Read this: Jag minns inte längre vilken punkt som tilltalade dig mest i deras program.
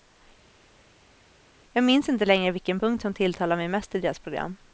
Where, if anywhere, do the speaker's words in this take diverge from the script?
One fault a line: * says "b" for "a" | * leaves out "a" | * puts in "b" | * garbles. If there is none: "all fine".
* says "mig" for "dig"